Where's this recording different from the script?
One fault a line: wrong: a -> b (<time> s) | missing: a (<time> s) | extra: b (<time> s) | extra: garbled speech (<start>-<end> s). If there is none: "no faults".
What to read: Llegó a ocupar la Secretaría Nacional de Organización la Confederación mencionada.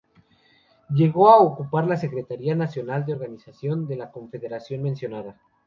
extra: de (3.9 s)